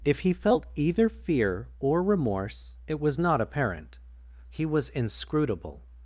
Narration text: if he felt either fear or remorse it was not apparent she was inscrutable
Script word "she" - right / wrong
wrong